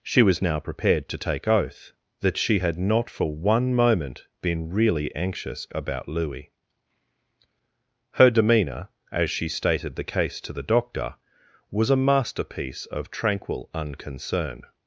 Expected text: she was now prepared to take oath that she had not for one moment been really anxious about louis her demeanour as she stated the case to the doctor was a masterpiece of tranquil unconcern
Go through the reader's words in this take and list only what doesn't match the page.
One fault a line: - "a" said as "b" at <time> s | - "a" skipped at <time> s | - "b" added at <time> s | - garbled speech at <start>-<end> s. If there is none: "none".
none